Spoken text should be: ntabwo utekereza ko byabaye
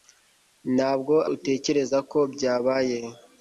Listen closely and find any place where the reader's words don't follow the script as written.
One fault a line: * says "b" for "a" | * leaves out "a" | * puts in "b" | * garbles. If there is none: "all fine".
all fine